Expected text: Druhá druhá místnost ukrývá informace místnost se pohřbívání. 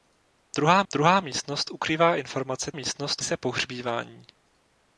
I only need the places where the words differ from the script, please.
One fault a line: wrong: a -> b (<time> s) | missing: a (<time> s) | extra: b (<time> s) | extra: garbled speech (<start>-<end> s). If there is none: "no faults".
no faults